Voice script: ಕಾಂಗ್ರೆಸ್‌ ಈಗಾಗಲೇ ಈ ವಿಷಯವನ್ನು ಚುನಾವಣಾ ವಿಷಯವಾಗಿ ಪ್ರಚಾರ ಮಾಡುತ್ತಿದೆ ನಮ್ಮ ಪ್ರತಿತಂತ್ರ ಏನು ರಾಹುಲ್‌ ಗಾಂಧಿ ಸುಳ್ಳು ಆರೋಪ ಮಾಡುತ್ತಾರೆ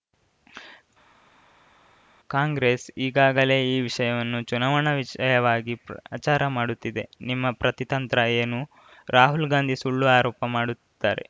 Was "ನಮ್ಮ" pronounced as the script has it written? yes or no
no